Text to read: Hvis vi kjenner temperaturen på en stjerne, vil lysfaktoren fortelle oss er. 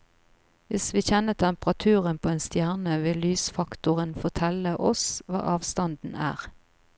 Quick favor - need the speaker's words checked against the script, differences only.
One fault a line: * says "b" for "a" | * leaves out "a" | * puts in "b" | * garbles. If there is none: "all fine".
* puts in "hva avstanden"